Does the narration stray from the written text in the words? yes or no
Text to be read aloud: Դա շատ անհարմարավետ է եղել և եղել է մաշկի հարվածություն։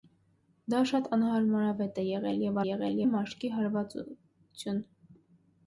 no